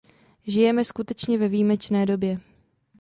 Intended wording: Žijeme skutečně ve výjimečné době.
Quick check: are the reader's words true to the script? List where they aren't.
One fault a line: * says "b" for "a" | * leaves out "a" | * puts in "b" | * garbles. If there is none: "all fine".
all fine